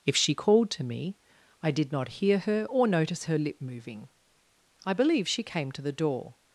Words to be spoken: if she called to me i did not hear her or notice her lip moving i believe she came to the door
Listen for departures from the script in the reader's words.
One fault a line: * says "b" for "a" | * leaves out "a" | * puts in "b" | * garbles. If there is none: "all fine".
all fine